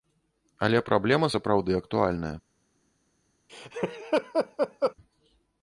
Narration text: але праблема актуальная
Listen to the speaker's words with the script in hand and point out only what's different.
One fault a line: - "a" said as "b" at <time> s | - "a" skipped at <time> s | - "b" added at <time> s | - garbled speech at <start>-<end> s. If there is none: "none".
- "сапраўды" added at 1.3 s